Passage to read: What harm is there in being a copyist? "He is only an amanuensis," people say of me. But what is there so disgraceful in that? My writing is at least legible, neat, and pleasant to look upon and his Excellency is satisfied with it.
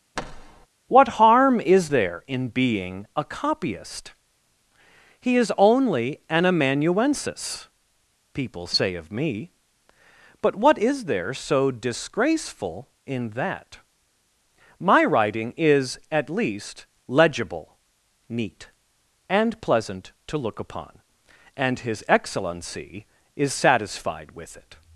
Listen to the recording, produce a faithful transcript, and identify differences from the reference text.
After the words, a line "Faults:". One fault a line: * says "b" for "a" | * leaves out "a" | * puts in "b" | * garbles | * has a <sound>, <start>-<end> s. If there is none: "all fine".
What harm is there in being a copyist? "He is only an amanuensis," people say of me. But what is there so disgraceful in that? My writing is at least legible, neat, and pleasant to look upon and his Excellency is satisfied with it.
Faults:
* has a thud, 0.2-0.7 s